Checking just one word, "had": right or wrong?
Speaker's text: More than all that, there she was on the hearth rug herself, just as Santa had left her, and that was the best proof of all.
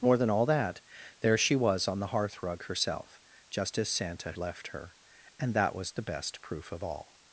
wrong